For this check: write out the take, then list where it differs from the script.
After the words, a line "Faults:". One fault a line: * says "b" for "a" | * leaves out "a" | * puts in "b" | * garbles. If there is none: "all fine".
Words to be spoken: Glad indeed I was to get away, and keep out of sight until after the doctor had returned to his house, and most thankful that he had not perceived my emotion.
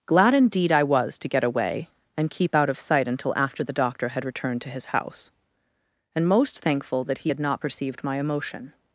Glad indeed I was to get away, and keep out of sight until after the doctor had returned to his house, and most thankful that he had not perceived my emotion.
Faults:
all fine